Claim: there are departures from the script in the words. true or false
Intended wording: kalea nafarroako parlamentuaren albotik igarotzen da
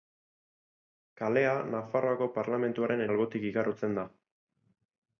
false